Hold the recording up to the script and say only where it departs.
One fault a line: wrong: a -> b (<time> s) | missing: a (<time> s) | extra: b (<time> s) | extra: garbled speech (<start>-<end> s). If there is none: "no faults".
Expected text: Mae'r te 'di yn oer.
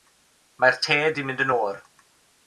extra: mynd (1.3 s)